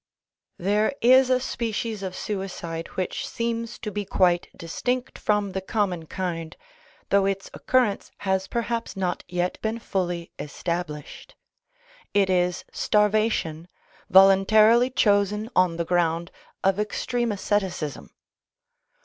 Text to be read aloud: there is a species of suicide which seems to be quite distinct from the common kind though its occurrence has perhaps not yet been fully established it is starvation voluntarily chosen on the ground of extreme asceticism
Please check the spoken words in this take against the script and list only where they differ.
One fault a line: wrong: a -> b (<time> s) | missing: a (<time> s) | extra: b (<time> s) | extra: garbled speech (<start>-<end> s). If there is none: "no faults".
no faults